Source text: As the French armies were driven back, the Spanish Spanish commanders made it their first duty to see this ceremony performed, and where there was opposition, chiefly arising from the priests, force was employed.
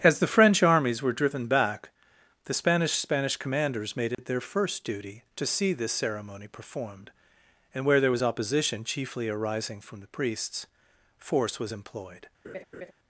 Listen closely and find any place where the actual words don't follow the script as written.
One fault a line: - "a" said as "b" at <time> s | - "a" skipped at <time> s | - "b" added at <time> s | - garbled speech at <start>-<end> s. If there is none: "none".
none